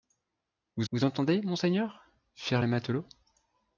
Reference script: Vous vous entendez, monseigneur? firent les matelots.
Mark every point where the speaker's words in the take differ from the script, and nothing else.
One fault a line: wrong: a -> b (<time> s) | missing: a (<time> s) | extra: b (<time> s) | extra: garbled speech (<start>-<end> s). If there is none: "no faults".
no faults